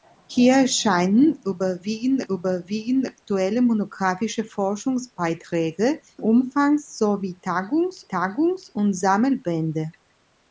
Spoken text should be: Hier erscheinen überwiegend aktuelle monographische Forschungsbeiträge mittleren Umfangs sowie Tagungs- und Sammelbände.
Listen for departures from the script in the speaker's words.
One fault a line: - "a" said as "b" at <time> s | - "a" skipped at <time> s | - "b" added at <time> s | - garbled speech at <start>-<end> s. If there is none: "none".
- "überwiegend" added at 2.3 s
- "mittleren" skipped at 6.0 s
- "Tagungs" added at 8.1 s